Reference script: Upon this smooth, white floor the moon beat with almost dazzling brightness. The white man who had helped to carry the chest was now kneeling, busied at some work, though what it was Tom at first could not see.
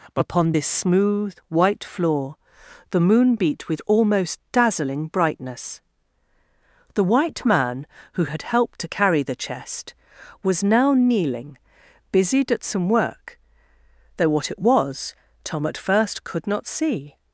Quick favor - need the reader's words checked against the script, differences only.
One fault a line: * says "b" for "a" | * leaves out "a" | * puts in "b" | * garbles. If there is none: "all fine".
all fine